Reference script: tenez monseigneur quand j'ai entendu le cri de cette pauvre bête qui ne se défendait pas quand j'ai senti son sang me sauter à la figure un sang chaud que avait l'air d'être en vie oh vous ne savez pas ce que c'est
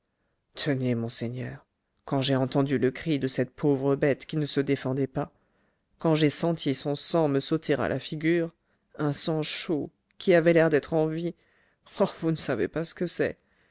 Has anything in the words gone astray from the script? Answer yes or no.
yes